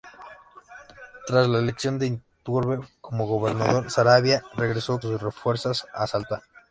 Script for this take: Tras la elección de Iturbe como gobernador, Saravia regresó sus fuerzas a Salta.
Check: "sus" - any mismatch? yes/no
no